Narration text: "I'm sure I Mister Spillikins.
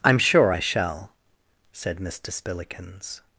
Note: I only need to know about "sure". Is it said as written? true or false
true